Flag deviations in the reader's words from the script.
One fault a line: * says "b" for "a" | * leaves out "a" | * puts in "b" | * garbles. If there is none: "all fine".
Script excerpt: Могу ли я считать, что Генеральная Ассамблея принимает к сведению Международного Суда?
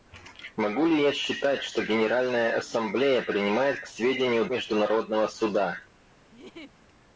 all fine